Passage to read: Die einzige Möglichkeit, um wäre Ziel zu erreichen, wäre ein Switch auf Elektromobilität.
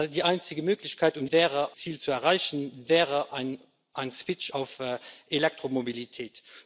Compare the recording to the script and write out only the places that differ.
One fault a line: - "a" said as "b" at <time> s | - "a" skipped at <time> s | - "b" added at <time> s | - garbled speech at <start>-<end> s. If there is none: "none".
none